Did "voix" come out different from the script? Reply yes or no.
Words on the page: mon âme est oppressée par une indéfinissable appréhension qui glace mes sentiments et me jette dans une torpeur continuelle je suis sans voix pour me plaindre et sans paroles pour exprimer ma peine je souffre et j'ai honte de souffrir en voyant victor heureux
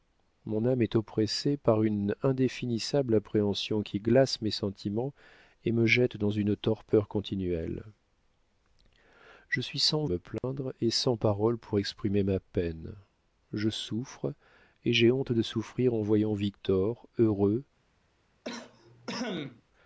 yes